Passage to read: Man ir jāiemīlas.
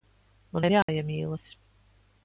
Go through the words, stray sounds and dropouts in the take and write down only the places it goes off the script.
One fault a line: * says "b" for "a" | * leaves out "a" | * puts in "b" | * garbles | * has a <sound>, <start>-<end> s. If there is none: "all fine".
* has a dropout, 0.8-0.9 s